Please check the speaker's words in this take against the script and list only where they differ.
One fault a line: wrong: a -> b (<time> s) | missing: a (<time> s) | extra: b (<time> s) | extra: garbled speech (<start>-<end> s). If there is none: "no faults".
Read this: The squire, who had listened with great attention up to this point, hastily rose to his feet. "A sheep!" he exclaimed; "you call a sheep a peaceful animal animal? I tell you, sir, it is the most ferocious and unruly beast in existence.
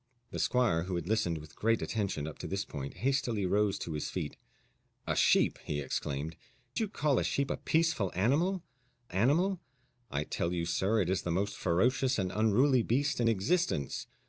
no faults